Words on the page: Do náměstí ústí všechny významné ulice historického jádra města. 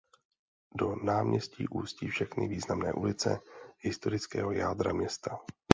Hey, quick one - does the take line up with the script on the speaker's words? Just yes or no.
yes